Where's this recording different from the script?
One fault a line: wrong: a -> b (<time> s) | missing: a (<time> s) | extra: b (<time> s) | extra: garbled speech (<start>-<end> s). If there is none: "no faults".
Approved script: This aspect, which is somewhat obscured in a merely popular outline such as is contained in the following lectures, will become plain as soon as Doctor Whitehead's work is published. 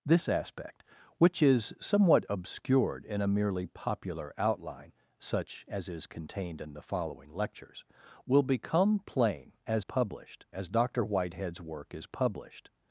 wrong: soon -> published (9.8 s)